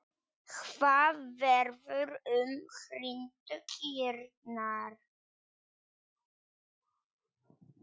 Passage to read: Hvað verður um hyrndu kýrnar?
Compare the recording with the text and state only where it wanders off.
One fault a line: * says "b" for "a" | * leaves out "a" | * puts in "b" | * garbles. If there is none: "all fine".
all fine